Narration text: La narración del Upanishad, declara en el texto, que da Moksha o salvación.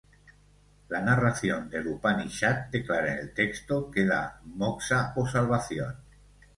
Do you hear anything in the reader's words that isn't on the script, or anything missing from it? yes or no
no